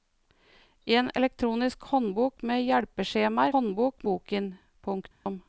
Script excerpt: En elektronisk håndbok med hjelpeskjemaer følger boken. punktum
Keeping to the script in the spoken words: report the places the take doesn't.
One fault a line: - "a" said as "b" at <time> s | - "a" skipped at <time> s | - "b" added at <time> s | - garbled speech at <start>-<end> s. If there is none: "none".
- "følger" said as "håndbok" at 3.5 s